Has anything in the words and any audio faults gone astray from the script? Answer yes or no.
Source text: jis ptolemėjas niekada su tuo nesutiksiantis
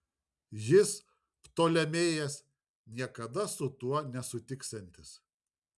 no